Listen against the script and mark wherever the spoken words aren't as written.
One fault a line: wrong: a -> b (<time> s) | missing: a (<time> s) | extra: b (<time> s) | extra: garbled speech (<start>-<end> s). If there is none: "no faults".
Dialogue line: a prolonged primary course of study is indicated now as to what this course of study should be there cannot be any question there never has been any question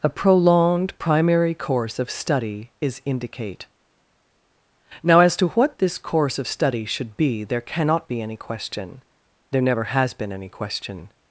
wrong: indicated -> indicate (3.0 s)